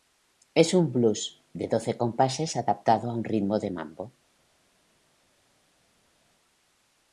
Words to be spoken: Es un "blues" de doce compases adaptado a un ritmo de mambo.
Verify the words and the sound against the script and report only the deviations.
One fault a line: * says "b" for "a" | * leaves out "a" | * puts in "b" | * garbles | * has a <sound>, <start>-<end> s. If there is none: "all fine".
all fine